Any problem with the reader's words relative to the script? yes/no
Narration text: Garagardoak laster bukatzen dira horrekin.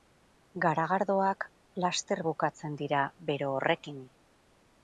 yes